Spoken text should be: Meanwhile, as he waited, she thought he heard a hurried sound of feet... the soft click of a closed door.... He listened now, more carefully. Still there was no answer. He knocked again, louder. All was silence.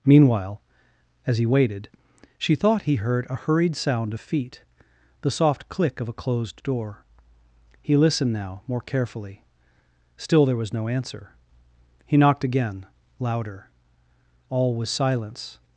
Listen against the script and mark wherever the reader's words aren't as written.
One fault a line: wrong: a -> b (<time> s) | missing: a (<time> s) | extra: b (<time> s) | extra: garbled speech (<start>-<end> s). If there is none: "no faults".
no faults